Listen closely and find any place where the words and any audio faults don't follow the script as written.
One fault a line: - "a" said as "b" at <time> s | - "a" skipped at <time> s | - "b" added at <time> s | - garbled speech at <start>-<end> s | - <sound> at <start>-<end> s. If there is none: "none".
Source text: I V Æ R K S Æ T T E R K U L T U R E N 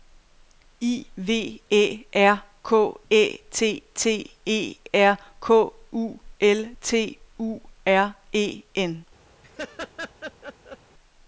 - "S" skipped at 2.7 s
- laugh at 9.4-10.8 s